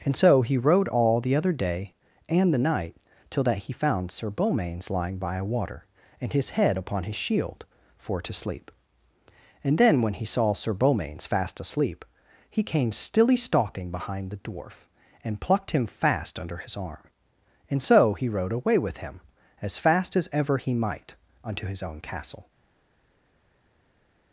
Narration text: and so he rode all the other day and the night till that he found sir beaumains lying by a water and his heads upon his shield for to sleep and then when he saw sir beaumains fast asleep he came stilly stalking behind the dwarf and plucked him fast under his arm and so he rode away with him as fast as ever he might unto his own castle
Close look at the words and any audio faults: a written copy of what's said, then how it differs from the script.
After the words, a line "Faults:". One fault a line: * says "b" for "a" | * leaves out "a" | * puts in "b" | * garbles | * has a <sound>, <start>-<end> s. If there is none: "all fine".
and so he rode all the other day and the night till that he found sir beaumains lying by a water and his head upon his shield for to sleep and then when he saw sir beaumains fast asleep he came stilly stalking behind the dwarf and plucked him fast under his arm and so he rode away with him as fast as ever he might unto his own castle
Faults:
* says "head" for "heads"